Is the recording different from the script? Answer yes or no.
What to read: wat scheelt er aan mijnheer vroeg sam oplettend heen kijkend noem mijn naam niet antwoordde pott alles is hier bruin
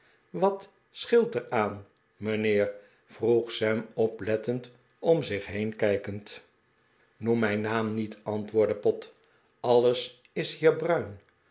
yes